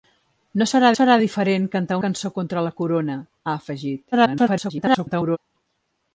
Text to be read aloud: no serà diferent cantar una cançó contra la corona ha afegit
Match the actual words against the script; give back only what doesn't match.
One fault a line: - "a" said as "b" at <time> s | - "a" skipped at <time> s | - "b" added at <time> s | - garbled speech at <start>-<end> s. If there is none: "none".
- "serà" added at 1.0 s
- "una" skipped at 2.0 s
- garbled speech at 4.1-5.4 s